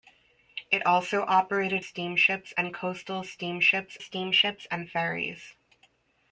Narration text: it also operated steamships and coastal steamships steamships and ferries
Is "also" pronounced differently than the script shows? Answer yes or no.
no